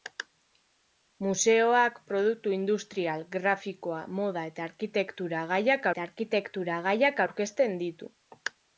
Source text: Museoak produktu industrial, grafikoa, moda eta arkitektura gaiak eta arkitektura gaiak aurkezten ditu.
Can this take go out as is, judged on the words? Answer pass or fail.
pass